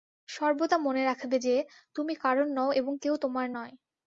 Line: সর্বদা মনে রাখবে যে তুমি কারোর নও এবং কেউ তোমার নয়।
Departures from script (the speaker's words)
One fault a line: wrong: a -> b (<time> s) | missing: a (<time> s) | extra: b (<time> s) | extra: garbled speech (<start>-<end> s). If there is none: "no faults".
no faults